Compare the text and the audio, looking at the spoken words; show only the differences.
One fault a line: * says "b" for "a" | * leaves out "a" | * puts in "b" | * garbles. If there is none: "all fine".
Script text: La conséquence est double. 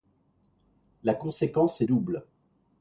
all fine